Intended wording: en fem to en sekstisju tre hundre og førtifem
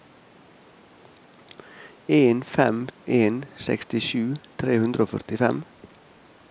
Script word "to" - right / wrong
wrong